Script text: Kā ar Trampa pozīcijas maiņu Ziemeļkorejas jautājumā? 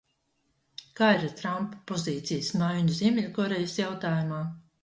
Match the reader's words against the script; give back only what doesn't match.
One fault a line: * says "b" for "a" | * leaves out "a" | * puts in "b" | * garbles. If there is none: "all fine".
* puts in "ir"